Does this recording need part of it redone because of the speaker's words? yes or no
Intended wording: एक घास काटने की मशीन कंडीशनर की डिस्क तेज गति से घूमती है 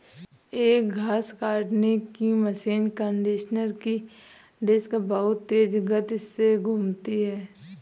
yes